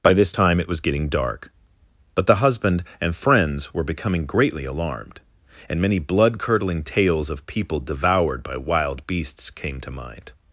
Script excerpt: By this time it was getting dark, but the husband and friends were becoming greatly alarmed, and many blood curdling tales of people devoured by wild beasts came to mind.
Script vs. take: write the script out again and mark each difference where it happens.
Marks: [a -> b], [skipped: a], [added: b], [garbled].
By this time it was getting dark, but the husband and friends were becoming greatly alarmed, and many blood curdling tales of people devoured by wild beasts came to mind.